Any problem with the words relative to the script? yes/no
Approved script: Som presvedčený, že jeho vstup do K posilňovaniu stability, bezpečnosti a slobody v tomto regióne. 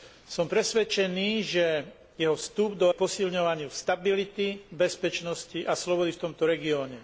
no